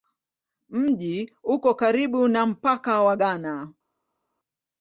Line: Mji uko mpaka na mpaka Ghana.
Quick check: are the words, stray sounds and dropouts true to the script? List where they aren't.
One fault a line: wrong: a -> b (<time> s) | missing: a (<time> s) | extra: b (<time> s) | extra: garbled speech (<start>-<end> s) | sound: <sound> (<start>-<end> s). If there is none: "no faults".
wrong: mpaka -> karibu (1.7 s)
extra: wa (3.0 s)